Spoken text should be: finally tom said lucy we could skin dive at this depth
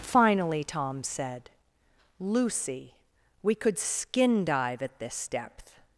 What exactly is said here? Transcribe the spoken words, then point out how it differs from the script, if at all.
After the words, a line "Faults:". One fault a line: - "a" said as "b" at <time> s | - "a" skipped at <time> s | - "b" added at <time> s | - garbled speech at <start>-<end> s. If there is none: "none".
finally tom said lucy we could skin dive at this depth
Faults:
none